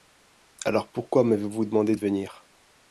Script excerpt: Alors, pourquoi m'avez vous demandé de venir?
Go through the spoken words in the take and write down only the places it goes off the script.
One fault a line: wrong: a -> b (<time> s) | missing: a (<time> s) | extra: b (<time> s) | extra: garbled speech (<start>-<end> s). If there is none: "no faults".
no faults